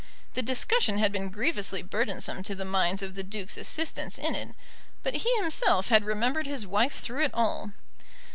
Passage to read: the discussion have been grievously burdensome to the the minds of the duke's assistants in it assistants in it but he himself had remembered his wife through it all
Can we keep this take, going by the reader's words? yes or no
no